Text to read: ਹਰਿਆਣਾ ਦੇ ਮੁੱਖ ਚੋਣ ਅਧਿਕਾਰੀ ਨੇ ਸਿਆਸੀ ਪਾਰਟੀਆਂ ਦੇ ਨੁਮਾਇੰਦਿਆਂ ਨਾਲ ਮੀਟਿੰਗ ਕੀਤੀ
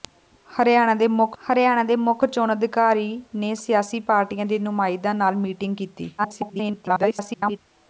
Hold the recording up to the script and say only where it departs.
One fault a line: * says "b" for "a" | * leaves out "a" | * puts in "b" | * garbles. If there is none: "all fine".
* puts in "ਹਰਿਆਣਾ ਦੇ ਮੁੱਖ"
* garbles